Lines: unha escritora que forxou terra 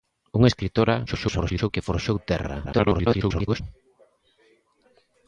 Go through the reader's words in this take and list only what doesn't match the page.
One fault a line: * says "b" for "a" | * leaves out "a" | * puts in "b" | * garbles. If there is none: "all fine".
* garbles
* garbles